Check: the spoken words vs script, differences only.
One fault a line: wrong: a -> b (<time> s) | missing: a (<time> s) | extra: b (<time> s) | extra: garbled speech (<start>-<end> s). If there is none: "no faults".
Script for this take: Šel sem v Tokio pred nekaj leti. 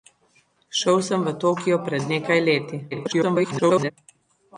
extra: garbled speech (2.9-3.9 s)